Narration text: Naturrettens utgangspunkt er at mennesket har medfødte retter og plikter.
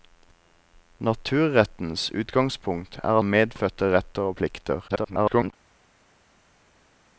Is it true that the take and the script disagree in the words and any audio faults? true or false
true